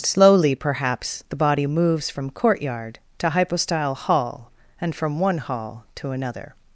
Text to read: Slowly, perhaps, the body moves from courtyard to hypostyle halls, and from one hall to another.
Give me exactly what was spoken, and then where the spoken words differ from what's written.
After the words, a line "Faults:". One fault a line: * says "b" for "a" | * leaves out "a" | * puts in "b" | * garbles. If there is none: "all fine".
Slowly, perhaps, the body moves from courtyard to hypostyle hall, and from one hall to another.
Faults:
* says "hall" for "halls"